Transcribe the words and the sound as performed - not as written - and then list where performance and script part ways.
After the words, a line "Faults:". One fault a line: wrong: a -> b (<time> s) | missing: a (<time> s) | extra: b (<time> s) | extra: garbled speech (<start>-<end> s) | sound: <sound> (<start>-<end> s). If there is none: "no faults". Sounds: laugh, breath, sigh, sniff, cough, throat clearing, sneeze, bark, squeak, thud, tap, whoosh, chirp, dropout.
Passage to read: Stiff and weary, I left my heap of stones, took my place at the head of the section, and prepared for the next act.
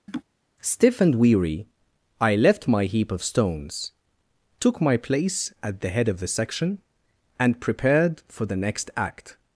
Stiff and weary, I left my heap of stones, took my place at the head of the section, and prepared for the next act.
Faults:
sound: laugh (0.1-0.2 s)